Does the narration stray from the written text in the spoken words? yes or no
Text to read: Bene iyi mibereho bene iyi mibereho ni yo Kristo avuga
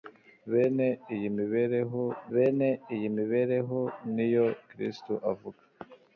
no